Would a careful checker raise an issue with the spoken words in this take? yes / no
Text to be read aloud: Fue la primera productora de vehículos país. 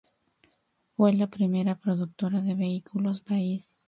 no